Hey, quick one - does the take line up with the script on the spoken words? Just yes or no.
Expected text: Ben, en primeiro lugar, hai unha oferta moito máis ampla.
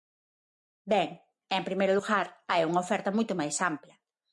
yes